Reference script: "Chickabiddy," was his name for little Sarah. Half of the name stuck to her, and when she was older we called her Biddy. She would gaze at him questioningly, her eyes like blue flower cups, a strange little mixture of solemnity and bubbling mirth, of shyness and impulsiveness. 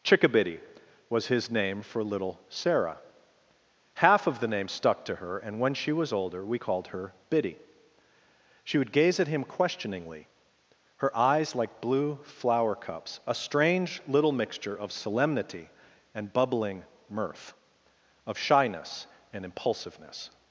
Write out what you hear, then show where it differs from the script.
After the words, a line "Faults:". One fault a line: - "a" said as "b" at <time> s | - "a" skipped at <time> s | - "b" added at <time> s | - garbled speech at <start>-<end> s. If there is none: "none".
"Chickabiddy," was his name for little Sarah. Half of the name stuck to her, and when she was older we called her Biddy. She would gaze at him questioningly, her eyes like blue flower cups, a strange little mixture of solemnity and bubbling mirth, of shyness and impulsiveness.
Faults:
none